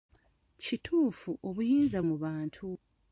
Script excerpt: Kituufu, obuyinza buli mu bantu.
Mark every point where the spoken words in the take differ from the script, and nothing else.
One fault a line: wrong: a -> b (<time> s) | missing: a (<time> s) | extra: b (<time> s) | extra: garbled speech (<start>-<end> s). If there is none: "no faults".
missing: buli (2.0 s)